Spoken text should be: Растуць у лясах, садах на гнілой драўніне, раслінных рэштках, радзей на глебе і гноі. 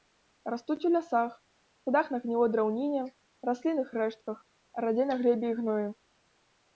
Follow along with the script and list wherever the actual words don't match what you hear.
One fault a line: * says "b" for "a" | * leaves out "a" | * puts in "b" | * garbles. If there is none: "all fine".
all fine